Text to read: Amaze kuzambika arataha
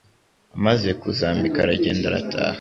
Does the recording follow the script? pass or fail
fail